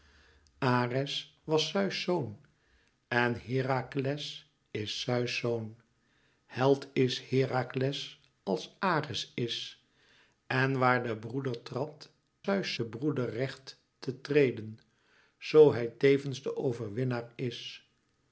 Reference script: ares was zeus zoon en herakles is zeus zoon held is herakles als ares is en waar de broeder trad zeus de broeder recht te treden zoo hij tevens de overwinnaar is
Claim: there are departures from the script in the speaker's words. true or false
false